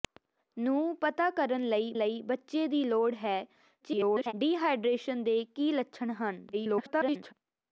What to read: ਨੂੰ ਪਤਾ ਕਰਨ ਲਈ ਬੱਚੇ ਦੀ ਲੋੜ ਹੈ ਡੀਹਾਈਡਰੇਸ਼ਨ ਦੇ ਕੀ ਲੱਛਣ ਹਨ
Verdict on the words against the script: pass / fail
fail